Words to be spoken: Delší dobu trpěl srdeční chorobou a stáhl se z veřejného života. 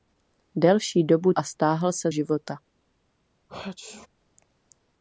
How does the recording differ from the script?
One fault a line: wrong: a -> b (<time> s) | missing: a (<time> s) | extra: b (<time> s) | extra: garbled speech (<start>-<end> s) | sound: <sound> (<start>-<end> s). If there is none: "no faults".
missing: trpěl srdeční chorobou (1.3 s)
missing: z veřejného (2.1 s)
sound: sneeze (3.5-4.1 s)